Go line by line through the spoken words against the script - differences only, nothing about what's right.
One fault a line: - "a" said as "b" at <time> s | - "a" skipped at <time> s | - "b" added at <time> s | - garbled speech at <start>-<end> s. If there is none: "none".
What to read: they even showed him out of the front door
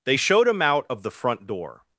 - "even" skipped at 0.2 s